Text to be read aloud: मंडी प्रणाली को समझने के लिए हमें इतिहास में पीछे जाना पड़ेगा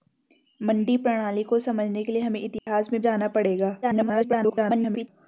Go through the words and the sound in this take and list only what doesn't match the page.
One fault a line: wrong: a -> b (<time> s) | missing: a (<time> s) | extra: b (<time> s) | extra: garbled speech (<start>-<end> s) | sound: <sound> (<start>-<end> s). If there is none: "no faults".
sound: dropout (2.6-2.7 s)
missing: पीछे (3.0 s)
extra: garbled speech (3.8-5.1 s)